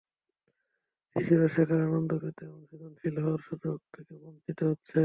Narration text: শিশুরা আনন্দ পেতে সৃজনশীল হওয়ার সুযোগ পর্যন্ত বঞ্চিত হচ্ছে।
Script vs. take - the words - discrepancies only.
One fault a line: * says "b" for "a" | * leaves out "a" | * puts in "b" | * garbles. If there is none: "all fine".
* puts in "শেখার"
* puts in "এবং"
* says "থেকে" for "পর্যন্ত"